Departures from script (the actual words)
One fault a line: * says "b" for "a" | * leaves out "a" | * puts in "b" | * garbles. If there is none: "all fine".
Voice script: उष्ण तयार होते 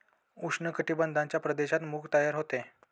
* puts in "कटिबंधाच्या प्रदेशात मूग"